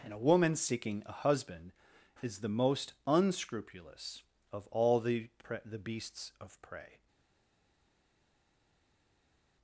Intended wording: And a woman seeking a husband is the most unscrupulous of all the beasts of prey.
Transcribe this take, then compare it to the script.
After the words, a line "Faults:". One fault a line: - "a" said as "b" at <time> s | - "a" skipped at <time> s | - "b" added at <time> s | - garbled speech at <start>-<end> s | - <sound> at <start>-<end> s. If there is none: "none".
And a woman seeking a husband is the most unscrupulous of all the pre the beasts of prey.
Faults:
- "pre the" added at 5.4 s